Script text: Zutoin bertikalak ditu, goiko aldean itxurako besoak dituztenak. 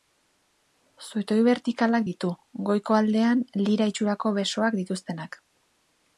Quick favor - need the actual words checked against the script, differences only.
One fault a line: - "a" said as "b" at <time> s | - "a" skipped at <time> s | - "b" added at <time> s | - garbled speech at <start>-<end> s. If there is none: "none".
- "lira" added at 3.7 s